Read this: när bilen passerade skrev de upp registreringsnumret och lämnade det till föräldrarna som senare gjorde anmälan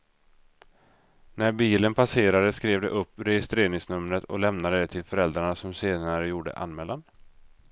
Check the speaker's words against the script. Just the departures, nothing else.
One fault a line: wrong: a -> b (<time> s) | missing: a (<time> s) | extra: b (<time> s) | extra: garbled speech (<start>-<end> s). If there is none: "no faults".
no faults